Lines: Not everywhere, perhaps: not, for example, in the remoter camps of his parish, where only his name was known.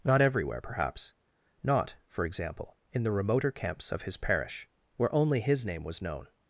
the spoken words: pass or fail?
pass